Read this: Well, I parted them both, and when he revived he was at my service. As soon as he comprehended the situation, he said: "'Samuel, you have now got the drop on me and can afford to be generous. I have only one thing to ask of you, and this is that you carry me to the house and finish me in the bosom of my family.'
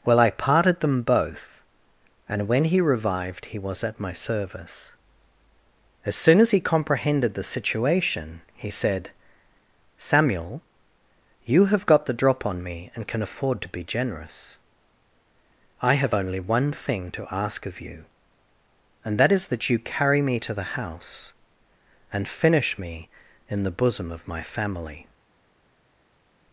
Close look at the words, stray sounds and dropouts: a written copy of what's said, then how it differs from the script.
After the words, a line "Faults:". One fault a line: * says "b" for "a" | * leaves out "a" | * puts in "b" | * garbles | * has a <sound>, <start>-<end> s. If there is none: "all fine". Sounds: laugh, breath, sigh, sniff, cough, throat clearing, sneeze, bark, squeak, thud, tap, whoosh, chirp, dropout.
Well, I parted them both, and when he revived he was at my service. As soon as he comprehended the situation, he said: "'Samuel, you have got the drop on me and can afford to be generous. I have only one thing to ask of you, and that is that you carry me to the house and finish me in the bosom of my family.'
Faults:
* leaves out "now"
* says "that" for "this"